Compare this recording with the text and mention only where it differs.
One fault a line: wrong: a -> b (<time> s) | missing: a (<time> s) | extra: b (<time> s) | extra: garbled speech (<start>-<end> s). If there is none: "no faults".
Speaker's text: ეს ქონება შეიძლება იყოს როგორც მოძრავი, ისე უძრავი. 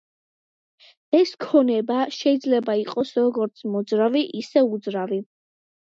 no faults